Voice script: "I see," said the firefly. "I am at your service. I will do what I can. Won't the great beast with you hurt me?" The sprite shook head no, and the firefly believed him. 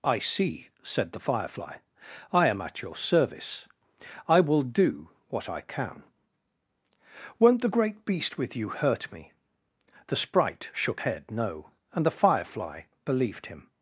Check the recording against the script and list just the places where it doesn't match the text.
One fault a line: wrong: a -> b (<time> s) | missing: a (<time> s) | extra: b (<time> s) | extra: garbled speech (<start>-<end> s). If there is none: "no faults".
no faults